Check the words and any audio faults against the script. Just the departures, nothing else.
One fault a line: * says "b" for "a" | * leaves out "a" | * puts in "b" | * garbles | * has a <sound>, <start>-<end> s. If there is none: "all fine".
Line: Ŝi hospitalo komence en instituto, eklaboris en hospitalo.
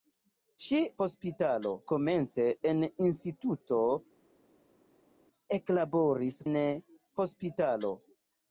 all fine